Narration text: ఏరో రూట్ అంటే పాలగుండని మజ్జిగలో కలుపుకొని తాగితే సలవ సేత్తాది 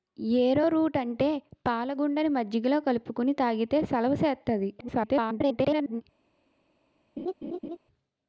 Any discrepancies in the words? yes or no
yes